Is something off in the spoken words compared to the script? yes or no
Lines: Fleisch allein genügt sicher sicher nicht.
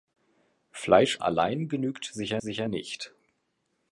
no